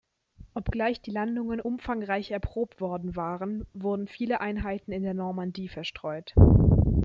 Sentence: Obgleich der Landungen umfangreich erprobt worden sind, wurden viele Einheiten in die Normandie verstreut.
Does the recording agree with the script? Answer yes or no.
no